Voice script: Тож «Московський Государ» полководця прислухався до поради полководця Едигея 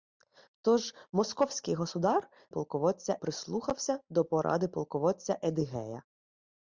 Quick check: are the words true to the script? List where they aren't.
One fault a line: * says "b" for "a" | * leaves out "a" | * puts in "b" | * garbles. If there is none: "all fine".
all fine